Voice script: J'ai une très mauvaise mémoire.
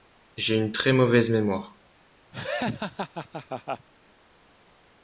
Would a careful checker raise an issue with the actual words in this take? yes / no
no